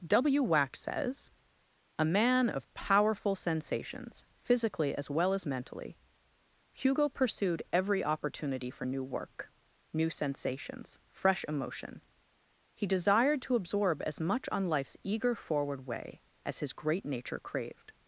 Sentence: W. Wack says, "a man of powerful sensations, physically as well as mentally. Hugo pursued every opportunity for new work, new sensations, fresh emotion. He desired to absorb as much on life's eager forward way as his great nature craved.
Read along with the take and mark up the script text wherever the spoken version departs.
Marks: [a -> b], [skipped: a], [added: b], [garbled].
W. Wack says, "a man of powerful sensations, physically as well as mentally. Hugo pursued every opportunity for new work, new sensations, fresh emotion. He desired to absorb as much on life's eager forward way as his great nature craved.